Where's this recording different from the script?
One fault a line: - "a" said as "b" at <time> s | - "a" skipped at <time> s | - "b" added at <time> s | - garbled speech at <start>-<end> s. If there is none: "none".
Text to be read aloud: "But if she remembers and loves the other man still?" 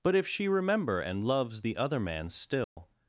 - "remembers" said as "remember" at 0.5 s